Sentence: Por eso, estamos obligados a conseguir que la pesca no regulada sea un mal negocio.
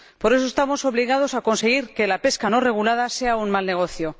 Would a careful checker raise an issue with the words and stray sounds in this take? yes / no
no